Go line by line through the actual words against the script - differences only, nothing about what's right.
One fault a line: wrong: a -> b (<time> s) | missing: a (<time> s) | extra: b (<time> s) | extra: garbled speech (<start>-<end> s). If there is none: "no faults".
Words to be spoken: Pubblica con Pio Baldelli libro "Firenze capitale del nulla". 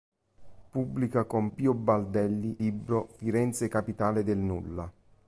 no faults